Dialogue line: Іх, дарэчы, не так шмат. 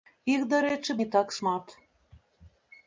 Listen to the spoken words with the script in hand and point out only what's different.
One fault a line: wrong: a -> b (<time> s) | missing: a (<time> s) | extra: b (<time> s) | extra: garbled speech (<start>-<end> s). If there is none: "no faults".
no faults